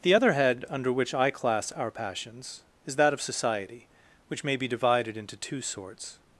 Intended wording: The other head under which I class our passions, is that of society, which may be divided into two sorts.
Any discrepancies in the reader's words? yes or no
no